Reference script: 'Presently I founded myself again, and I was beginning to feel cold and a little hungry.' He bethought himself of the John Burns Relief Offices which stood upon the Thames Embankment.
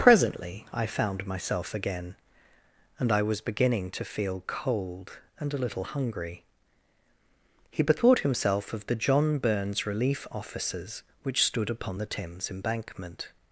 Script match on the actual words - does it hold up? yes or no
no